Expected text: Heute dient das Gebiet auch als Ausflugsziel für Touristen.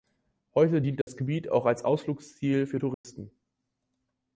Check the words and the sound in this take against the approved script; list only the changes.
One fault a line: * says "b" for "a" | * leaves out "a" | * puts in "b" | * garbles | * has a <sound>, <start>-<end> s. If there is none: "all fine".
* has a dropout, 1.0-1.1 s
* has a dropout, 2.9-3.0 s